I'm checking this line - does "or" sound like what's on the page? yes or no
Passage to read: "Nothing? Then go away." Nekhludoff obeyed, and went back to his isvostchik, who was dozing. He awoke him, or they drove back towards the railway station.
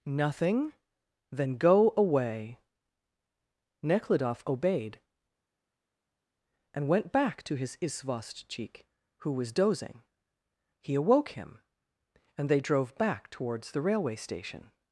no